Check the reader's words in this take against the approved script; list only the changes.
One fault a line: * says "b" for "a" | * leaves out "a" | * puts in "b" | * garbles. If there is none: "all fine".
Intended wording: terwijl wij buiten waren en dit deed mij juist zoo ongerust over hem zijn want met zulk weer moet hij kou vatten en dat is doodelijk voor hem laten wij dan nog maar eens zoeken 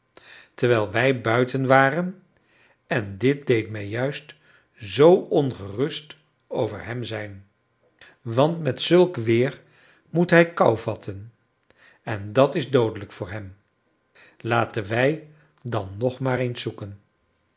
all fine